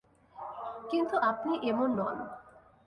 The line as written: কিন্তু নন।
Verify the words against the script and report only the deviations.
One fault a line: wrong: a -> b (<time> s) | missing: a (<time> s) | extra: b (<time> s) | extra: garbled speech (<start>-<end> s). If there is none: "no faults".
extra: আপনি এমন (1.3 s)